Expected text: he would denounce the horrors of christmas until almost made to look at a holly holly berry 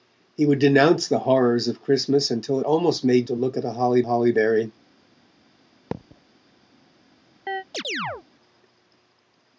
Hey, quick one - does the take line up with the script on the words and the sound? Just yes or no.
no